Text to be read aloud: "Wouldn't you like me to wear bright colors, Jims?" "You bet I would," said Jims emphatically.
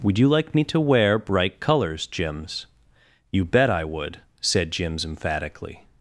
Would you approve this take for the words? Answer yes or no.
no